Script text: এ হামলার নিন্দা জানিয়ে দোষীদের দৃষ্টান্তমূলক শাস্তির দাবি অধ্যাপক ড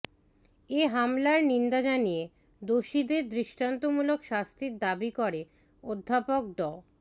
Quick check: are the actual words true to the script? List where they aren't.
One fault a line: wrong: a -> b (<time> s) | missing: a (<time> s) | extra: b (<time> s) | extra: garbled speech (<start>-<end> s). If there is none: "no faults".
extra: করে (5.2 s)